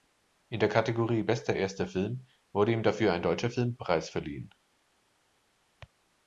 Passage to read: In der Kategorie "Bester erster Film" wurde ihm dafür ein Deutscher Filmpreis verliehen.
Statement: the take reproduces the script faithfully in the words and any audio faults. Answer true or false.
true